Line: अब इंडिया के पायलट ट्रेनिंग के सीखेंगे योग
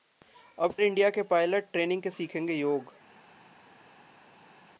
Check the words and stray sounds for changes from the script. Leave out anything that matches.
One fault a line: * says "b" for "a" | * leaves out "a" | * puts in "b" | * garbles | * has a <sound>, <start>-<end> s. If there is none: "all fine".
all fine